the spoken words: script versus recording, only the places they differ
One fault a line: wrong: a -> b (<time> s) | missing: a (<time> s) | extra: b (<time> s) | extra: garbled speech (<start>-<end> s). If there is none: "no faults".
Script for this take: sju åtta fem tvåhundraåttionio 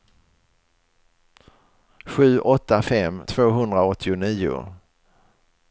no faults